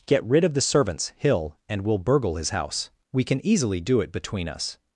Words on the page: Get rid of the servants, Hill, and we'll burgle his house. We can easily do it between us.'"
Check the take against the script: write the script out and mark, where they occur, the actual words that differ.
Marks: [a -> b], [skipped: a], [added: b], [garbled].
Get rid of the servants, Hill, and we'll burgle his house. We can easily do it between us.'"